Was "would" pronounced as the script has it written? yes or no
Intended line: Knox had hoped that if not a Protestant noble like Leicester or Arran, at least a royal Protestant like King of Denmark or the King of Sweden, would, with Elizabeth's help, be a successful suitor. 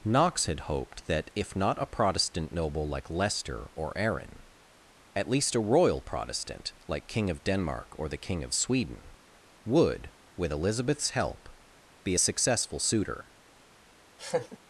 yes